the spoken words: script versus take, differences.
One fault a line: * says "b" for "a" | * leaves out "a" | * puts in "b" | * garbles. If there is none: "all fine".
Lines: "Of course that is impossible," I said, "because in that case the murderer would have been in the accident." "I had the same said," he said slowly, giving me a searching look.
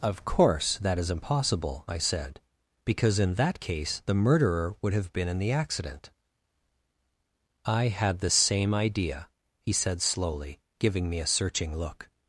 * says "idea" for "said"